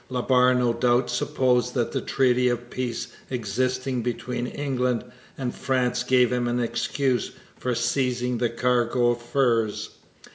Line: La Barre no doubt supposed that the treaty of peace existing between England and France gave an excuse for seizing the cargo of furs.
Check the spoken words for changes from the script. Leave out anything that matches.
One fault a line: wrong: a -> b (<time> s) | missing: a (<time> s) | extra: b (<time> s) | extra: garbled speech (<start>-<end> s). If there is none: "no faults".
extra: him (6.3 s)